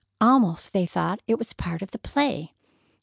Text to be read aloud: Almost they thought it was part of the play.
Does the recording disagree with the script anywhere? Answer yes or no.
no